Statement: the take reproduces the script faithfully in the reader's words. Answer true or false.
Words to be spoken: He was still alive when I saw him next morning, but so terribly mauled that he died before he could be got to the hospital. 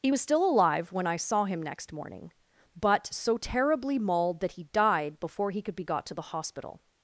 true